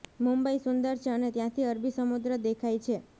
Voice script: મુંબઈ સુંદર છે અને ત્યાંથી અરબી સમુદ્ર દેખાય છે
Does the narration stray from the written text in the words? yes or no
no